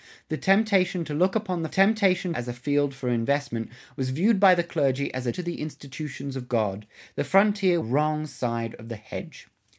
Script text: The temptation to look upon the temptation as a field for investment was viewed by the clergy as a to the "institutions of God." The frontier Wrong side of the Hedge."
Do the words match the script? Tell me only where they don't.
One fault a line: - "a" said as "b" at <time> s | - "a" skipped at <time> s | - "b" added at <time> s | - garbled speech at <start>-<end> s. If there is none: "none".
none